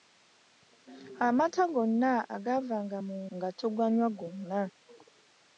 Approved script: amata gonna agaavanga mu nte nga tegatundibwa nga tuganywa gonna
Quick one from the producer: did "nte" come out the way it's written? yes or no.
no